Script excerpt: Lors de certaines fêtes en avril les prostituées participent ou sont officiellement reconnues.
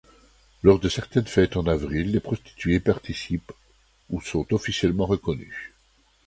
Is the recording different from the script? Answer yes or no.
no